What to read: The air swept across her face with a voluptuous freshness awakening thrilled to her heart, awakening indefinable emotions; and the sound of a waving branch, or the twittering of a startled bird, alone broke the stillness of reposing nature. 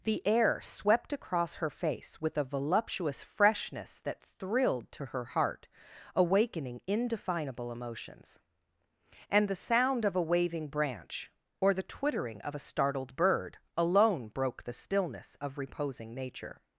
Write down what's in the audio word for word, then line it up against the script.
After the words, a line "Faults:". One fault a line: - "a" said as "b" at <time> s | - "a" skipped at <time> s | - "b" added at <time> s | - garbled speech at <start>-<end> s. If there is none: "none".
The air swept across her face with a voluptuous freshness that thrilled to her heart, awakening indefinable emotions; and the sound of a waving branch, or the twittering of a startled bird, alone broke the stillness of reposing nature.
Faults:
- "awakening" said as "that" at 4.0 s